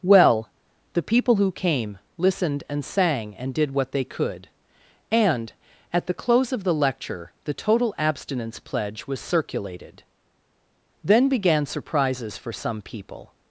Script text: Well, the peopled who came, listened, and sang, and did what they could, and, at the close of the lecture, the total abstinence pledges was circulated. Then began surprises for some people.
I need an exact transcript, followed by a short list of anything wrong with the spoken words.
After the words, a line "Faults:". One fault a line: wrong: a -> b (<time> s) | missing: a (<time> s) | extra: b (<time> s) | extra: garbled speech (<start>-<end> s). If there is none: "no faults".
Well, the people who came, listened, and sang, and did what they could, and, at the close of the lecture, the total abstinence pledge was circulated. Then began surprises for some people.
Faults:
wrong: peopled -> people (1.0 s)
wrong: pledges -> pledge (8.6 s)